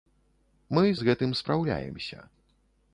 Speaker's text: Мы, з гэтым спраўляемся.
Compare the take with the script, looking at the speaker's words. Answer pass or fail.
pass